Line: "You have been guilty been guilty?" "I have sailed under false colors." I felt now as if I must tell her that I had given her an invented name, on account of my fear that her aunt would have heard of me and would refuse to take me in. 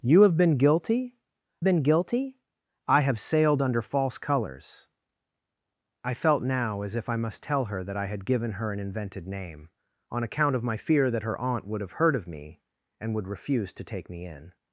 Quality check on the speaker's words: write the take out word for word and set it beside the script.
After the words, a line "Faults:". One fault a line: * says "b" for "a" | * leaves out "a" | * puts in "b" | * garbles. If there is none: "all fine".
"You have been guilty been guilty?" "I have sailed under false colors." I felt now as if I must tell her that I had given her an invented name, on account of my fear that her aunt would have heard of me and would refuse to take me in.
Faults:
all fine